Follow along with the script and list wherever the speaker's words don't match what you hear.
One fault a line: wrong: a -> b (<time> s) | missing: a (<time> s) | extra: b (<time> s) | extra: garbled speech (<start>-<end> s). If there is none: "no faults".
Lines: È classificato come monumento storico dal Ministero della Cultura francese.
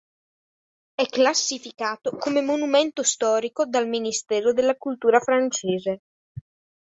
no faults